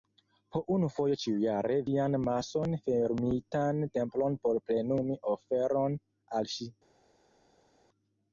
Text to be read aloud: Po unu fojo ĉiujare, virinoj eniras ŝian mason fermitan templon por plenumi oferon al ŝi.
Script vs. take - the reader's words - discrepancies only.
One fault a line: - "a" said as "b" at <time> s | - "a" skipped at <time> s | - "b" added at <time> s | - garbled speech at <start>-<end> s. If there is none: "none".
- "virinoj eniras" skipped at 1.8 s